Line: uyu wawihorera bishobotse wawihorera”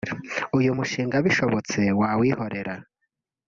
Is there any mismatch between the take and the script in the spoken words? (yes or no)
yes